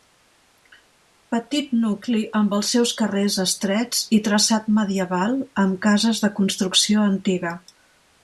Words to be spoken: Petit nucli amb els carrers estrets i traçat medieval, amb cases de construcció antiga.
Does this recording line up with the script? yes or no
no